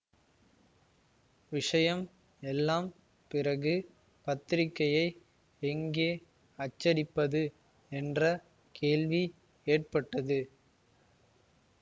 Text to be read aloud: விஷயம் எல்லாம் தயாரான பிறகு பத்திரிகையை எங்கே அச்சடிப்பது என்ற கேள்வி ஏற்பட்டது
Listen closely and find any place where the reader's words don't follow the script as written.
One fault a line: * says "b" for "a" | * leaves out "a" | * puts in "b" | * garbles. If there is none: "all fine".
* leaves out "தயாரான"